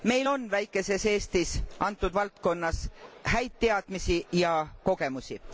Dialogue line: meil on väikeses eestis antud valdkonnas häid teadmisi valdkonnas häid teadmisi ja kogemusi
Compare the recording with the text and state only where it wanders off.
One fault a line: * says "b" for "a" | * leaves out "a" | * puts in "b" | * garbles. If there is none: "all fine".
* leaves out "valdkonnas häid teadmisi"